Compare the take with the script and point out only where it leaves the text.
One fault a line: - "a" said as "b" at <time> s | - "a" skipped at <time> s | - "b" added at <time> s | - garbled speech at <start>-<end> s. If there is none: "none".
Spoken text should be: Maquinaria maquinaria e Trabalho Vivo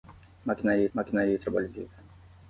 none